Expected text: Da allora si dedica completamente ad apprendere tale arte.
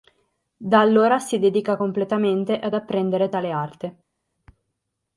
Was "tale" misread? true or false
false